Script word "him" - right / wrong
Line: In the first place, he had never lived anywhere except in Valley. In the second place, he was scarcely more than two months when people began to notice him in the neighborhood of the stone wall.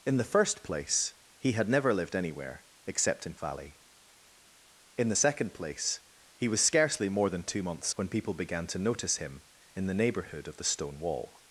right